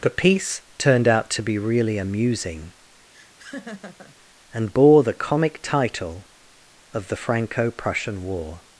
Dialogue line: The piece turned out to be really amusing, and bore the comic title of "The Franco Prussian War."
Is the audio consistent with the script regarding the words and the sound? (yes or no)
no